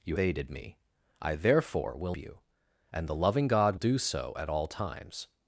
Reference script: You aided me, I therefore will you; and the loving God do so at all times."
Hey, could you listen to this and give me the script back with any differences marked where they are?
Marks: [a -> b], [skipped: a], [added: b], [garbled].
You aided me, I therefore will you; and the loving God do so at all times."